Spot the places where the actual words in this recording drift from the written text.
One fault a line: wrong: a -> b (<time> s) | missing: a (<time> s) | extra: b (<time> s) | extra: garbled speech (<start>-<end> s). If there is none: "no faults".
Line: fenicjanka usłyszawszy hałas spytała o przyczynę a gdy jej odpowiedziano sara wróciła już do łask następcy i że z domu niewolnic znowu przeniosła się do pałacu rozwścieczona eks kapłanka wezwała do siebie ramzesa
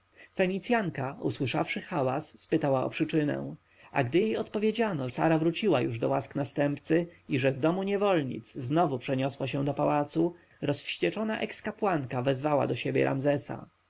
no faults